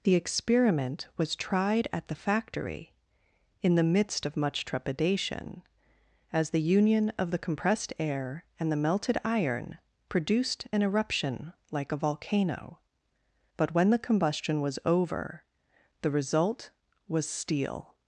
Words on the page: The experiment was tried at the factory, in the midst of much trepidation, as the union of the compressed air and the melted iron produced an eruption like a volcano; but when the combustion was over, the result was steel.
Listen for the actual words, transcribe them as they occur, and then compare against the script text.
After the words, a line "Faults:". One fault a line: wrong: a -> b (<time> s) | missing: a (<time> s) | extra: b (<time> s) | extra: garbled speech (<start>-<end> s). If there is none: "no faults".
The experiment was tried at the factory, in the midst of much trepidation, as the union of the compressed air and the melted iron produced an eruption like a volcano; but when the combustion was over, the result was steel.
Faults:
no faults